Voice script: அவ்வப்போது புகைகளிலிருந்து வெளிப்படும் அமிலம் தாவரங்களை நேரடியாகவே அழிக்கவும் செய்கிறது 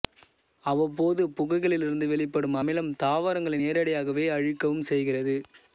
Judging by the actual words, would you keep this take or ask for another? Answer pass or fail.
pass